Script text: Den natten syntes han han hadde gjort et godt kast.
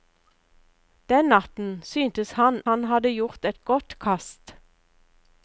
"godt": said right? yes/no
yes